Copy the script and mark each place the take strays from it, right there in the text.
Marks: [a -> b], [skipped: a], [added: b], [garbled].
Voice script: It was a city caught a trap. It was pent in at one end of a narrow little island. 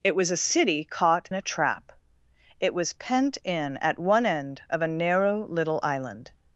It was a city caught a trap. It was pent in at one end of a narrow little island.